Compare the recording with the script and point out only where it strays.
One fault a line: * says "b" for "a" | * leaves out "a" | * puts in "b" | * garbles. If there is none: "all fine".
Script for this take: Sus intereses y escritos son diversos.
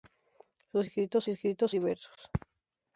* says "escritos" for "intereses"
* leaves out "son"